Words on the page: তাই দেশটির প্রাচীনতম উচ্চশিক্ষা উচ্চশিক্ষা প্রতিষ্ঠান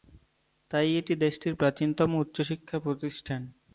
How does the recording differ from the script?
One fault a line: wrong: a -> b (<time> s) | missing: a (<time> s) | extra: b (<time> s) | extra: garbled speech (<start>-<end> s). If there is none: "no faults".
extra: এটি (1.0 s)
missing: উচ্চশিক্ষা (2.8 s)